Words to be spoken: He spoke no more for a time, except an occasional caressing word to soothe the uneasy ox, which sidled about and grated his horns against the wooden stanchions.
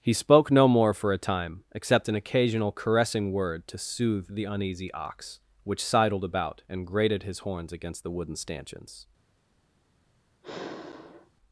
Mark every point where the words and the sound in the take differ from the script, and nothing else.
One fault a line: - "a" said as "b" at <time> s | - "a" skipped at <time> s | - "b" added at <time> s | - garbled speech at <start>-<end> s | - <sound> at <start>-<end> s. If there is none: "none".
- sigh at 10.4-11.3 s